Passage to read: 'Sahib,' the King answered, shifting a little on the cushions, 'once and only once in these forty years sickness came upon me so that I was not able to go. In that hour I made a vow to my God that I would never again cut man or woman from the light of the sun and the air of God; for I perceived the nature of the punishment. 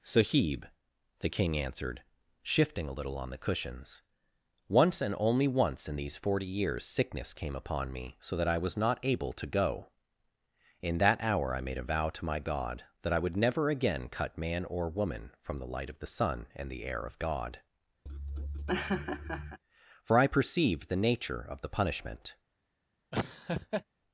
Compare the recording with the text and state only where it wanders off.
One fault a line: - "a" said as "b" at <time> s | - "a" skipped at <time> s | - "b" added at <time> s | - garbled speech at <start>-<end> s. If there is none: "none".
none